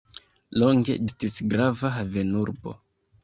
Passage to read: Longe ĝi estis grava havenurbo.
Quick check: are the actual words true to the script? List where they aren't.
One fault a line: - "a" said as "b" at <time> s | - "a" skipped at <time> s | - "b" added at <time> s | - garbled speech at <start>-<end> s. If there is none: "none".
- "ĝi" skipped at 0.9 s